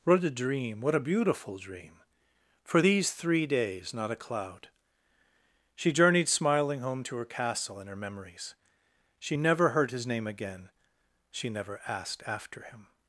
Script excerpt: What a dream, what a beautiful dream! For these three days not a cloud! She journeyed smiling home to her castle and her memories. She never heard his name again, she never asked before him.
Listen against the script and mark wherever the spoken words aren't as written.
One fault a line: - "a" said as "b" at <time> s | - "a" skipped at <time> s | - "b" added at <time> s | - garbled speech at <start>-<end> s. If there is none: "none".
- "before" said as "after" at 12.3 s